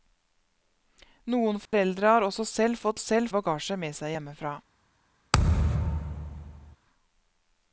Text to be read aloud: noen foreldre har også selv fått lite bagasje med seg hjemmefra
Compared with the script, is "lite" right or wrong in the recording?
wrong